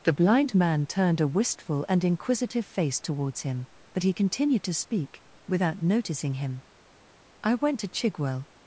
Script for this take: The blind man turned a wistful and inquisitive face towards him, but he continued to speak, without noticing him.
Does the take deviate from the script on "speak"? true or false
false